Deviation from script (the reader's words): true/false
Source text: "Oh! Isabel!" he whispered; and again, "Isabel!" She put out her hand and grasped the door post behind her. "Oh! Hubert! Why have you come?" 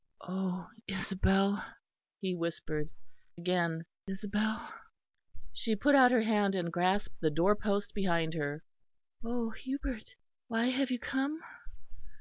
true